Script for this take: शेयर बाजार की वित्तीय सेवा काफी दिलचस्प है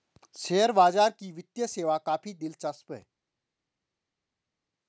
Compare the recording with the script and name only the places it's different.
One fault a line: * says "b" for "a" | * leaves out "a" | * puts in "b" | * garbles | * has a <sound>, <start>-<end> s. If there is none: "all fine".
all fine